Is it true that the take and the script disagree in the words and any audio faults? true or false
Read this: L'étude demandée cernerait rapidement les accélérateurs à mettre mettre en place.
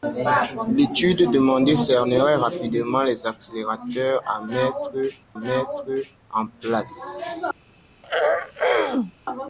true